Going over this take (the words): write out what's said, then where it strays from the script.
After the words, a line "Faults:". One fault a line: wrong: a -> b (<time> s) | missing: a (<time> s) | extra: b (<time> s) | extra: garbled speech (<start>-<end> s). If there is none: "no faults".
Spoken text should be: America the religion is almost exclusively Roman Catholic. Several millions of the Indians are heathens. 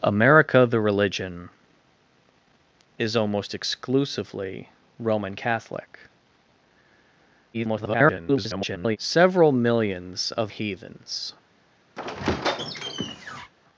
America the religion is almost exclusively Roman Catholic. [garbled] Several millions of heathens.
Faults:
extra: garbled speech (7.5-9.0 s)
missing: the Indians are (10.5 s)